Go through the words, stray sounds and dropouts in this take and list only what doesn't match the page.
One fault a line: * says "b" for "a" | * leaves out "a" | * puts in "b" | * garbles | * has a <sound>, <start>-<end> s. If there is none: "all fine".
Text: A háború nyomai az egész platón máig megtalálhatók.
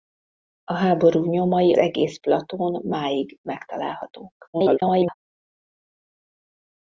* leaves out "az"
* garbles